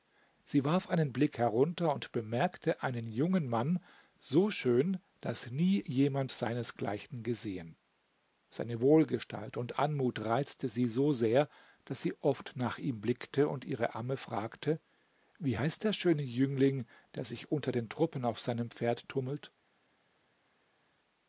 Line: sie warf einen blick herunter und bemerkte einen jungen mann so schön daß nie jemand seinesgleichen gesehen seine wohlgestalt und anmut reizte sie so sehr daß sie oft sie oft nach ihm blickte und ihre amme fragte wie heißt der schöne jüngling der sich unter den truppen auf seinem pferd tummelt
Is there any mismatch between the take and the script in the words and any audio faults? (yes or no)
yes